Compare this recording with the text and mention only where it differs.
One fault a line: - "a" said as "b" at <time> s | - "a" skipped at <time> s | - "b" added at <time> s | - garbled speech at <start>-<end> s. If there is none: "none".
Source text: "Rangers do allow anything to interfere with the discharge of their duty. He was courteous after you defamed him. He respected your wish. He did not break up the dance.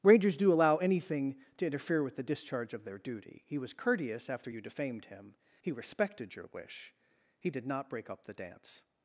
none